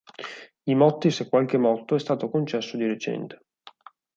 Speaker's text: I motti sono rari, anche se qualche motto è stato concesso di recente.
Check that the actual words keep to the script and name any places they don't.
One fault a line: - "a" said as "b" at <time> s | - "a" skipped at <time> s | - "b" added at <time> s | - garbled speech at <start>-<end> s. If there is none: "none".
- "sono rari anche" skipped at 1.1 s